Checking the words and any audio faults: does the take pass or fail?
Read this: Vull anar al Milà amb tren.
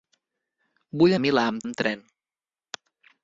fail